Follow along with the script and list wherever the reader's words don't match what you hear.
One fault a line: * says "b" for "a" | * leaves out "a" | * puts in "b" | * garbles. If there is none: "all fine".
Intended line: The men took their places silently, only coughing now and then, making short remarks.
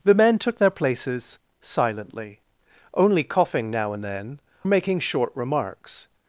all fine